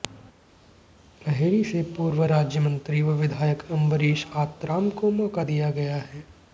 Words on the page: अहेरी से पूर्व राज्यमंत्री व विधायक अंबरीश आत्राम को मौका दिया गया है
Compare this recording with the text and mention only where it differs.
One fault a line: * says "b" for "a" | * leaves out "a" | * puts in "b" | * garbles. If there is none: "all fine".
all fine